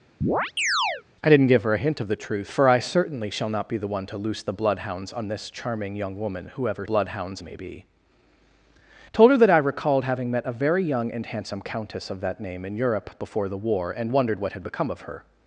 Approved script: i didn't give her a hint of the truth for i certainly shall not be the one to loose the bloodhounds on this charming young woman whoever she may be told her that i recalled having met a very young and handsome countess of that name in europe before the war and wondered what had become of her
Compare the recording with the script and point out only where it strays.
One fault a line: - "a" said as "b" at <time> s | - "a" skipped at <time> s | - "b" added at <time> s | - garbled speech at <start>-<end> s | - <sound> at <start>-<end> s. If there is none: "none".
- chirp at 0.2-1.0 s
- "she" said as "bloodhounds" at 6.8 s